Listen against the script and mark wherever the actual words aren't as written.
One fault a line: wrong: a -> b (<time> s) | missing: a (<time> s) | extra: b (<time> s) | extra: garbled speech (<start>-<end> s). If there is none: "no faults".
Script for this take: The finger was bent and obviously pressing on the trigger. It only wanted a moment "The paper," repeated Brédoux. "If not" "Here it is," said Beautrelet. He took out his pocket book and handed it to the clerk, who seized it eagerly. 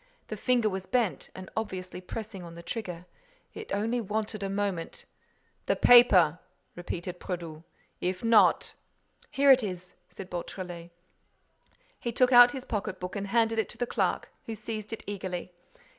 no faults